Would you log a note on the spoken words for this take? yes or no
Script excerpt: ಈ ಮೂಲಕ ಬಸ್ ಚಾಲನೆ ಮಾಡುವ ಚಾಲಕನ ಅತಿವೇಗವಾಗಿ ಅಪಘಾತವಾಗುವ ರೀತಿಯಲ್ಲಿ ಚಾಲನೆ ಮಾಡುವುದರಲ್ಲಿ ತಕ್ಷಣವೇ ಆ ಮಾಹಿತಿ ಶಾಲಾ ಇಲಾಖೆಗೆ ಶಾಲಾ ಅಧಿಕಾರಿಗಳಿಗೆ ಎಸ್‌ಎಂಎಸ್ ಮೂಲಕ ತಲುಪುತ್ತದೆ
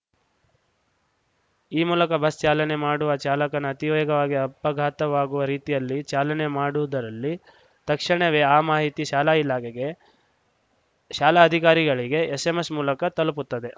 no